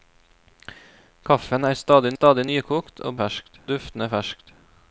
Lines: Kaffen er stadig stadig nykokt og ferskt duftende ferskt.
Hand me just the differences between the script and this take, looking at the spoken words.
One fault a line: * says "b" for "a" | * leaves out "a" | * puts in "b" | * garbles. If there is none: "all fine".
all fine